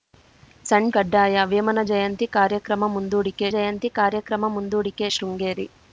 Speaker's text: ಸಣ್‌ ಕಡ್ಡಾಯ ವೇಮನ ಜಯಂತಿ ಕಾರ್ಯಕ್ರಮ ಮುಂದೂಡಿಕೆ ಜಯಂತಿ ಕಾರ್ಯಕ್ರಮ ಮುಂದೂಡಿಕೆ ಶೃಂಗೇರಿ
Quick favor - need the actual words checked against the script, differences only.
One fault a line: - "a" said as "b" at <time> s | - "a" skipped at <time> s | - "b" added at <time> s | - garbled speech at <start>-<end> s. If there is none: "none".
none